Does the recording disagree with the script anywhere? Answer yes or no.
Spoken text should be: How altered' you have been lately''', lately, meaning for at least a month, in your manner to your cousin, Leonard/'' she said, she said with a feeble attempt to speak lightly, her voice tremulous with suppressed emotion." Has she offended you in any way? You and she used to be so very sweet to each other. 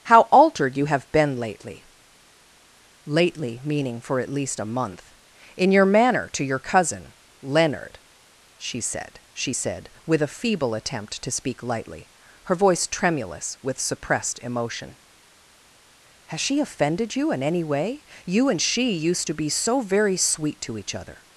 no